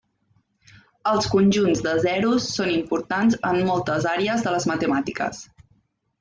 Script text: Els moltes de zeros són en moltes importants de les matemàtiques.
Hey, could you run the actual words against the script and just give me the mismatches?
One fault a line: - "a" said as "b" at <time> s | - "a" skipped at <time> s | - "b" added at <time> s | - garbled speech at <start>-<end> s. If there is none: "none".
- "moltes" said as "conjunts" at 1.3 s
- "importants" added at 2.8 s
- "importants" said as "àrees" at 4.2 s